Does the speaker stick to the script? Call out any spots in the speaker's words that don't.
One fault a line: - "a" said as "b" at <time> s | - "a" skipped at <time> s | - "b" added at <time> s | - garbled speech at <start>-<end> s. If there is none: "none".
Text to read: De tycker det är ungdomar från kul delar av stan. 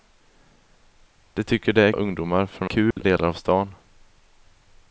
none